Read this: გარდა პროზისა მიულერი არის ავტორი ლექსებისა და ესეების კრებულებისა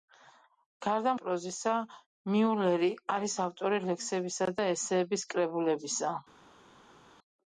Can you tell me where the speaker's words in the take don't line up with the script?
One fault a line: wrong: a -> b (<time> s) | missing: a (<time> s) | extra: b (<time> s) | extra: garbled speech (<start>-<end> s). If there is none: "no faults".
no faults